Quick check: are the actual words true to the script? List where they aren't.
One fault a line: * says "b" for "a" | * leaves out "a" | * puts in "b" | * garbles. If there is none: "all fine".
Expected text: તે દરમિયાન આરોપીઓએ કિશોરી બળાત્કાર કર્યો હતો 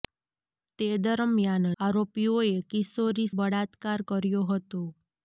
all fine